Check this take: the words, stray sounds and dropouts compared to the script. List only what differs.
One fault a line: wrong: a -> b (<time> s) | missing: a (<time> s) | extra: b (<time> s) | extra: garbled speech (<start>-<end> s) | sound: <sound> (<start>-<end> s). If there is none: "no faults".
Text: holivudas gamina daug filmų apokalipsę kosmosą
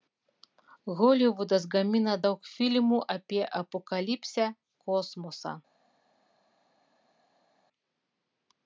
extra: apie (3.2 s)